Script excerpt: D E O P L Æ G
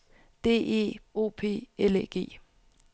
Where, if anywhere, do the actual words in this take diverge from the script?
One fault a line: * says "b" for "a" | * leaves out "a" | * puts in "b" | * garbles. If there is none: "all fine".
all fine